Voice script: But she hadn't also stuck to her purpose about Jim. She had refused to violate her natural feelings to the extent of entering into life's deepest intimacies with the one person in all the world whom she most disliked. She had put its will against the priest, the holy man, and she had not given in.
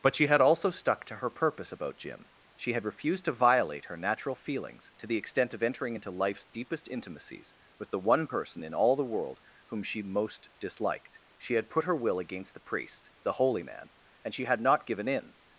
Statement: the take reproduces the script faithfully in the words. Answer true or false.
false